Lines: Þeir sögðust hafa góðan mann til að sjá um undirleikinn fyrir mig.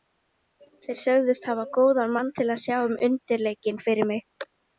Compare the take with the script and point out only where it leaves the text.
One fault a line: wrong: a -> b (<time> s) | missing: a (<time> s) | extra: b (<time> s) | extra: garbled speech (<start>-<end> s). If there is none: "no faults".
no faults